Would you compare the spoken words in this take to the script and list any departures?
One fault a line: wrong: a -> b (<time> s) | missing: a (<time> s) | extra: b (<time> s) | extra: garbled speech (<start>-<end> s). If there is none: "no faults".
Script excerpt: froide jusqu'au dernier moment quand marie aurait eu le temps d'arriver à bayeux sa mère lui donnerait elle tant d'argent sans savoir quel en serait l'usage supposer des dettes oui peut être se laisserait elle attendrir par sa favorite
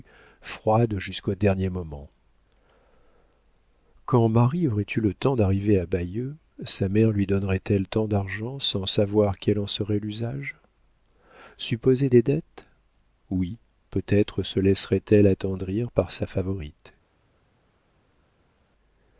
no faults